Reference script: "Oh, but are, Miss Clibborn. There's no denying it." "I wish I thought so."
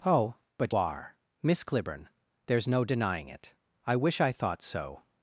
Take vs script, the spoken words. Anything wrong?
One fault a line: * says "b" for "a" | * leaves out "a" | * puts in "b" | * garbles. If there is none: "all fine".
all fine